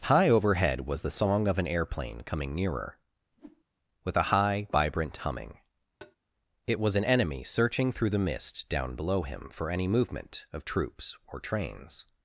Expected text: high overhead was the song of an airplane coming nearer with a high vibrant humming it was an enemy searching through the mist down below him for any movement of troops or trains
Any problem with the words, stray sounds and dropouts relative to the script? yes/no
yes